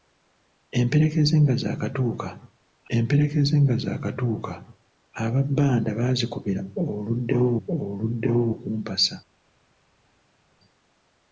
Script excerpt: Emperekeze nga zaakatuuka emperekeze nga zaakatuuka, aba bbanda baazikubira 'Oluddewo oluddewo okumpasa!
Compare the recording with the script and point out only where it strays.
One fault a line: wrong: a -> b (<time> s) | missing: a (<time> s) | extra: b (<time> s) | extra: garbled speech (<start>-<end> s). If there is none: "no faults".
no faults